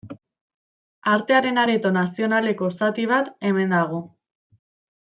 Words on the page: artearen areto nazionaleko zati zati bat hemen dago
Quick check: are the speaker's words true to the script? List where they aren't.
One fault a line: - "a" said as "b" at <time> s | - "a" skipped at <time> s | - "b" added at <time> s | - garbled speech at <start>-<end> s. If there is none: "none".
- "zati" skipped at 3.1 s